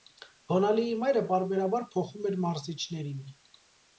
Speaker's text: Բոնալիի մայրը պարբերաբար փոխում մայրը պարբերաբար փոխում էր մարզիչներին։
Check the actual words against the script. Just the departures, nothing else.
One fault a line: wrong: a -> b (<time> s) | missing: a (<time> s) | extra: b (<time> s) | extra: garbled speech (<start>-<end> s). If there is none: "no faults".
missing: մայրը պարբերաբար փոխում (2.2 s)